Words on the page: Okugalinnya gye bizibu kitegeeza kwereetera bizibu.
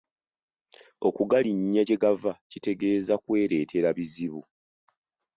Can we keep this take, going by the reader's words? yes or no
no